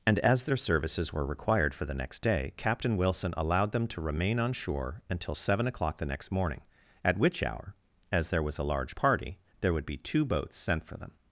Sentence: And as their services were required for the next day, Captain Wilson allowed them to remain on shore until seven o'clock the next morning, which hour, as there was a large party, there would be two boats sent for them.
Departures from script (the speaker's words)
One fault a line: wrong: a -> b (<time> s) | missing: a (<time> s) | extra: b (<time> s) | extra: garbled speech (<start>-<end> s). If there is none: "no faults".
extra: at (7.0 s)